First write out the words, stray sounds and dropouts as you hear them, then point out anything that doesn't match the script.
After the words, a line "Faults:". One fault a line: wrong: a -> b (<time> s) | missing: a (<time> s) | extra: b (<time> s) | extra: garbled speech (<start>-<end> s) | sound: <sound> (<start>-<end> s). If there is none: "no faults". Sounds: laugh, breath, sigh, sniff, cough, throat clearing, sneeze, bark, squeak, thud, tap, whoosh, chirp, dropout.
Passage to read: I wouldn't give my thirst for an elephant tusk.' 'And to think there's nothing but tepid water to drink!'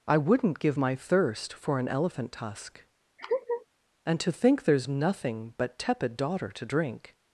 I wouldn't give my thirst for an elephant tusk.' 'And to think there's nothing but tepid daughter to drink!'
Faults:
sound: laugh (3.2-3.7 s)
wrong: water -> daughter (6.2 s)